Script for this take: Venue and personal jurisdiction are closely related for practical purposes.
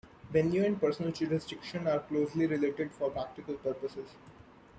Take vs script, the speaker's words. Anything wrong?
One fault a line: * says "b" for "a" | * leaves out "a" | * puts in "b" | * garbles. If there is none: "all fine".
all fine